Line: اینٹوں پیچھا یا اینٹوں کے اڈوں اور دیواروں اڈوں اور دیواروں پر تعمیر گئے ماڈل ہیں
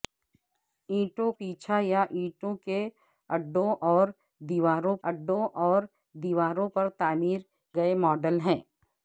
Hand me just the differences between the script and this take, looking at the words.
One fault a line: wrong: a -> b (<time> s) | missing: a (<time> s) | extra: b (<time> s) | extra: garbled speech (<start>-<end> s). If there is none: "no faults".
no faults